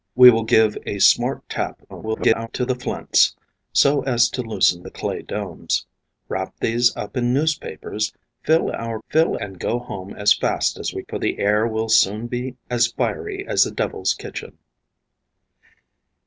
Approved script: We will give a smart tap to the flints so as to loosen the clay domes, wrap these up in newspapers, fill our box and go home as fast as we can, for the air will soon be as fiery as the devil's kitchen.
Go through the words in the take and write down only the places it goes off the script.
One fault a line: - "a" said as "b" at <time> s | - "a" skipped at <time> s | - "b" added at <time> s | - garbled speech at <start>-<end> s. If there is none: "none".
- garbled speech at 1.9-2.5 s
- "box" said as "fill" at 9.1 s
- "can" skipped at 11.0 s